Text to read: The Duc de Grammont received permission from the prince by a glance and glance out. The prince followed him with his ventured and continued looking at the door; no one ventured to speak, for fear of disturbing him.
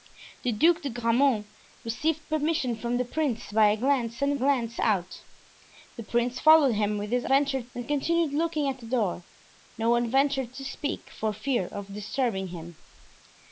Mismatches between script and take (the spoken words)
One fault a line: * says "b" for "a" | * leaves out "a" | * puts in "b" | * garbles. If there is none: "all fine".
all fine